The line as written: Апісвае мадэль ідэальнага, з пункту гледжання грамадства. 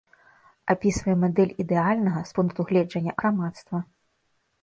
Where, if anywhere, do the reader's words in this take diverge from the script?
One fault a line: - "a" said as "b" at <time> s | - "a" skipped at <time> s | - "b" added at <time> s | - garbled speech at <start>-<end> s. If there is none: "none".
none